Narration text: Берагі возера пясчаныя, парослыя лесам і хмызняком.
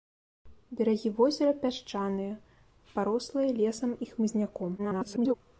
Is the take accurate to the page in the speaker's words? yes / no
no